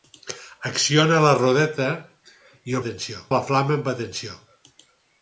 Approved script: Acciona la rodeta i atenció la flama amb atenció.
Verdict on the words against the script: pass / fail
pass